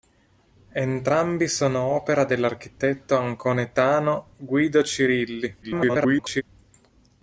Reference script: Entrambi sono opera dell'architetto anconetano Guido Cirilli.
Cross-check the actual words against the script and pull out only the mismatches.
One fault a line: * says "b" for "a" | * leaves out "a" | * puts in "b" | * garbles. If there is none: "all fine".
* garbles